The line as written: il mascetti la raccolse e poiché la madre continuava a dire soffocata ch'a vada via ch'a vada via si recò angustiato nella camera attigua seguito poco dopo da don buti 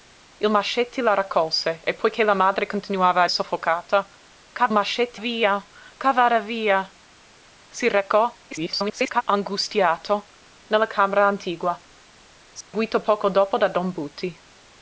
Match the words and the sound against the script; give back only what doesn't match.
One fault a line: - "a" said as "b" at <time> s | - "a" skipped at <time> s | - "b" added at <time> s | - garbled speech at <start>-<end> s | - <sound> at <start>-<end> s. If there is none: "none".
- "dire" skipped at 3.3 s
- "vada" said as "mascetti" at 4.7 s
- garbled speech at 8.5-9.2 s
- dropout at 12.6-12.7 s